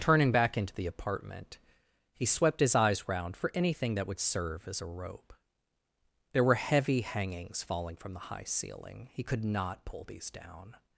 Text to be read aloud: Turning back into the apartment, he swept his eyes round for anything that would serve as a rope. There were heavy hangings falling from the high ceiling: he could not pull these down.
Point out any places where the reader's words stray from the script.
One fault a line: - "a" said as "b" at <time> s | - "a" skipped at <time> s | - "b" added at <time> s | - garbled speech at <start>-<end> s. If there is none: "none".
none